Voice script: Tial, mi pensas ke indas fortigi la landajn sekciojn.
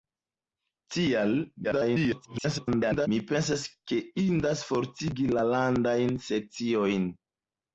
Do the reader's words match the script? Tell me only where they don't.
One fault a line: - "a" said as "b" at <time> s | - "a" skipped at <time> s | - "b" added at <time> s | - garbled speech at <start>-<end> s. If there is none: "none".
- garbled speech at 1.6-3.1 s